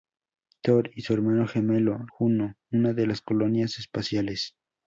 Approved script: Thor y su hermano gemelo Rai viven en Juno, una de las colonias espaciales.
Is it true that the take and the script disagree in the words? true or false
true